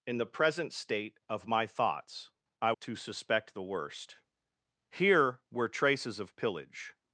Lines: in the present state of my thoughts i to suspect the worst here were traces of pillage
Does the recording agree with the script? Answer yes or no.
yes